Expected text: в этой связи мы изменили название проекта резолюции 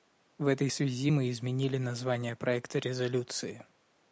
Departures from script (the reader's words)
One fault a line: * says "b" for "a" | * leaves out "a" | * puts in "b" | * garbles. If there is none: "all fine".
all fine